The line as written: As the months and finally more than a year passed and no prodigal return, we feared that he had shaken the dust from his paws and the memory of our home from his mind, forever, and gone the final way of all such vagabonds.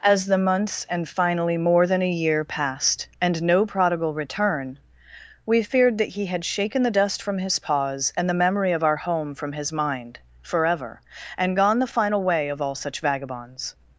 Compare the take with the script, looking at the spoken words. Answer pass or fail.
pass